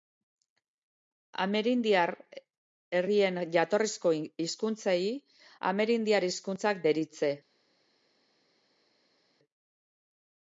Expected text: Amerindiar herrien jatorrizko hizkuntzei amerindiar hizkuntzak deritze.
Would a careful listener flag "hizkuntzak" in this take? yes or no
no